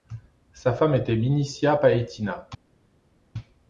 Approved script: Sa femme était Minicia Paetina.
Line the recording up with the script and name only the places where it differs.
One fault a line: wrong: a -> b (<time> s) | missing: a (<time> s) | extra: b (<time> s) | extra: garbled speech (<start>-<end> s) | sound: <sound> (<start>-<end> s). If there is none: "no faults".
no faults